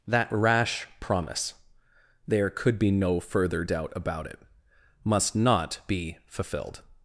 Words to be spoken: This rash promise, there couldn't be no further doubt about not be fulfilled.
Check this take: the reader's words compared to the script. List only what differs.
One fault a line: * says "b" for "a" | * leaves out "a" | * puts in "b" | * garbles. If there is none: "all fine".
* says "That" for "This"
* says "could" for "couldn't"
* puts in "it must"